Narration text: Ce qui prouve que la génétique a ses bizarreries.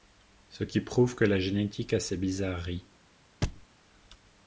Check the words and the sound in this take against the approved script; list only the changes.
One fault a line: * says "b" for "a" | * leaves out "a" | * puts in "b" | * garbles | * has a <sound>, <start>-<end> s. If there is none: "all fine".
* has a thud, 3.4-3.7 s